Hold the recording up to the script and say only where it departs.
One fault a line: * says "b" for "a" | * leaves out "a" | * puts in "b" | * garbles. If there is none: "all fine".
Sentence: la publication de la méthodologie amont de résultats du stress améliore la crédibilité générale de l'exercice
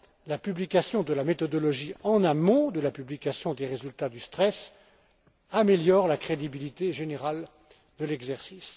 * puts in "en"
* puts in "la publication des"